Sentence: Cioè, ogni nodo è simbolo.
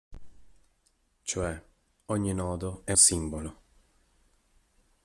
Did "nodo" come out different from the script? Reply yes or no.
no